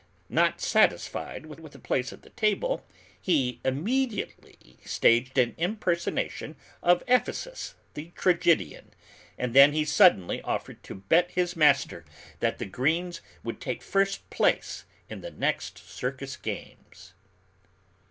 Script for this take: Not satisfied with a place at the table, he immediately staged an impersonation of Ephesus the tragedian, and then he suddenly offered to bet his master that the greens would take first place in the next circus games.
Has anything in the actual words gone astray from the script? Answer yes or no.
yes